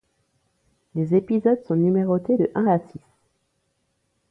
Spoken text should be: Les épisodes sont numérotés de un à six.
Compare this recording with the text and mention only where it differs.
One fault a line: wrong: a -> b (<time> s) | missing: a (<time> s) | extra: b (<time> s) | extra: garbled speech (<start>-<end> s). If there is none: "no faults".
no faults